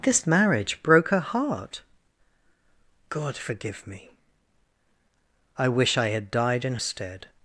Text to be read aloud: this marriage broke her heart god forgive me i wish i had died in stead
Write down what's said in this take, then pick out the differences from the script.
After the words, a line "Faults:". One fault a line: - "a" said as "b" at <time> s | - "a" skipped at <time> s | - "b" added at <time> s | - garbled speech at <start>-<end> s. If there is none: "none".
this marriage broke her heart god forgive me i wish i had died in stead
Faults:
none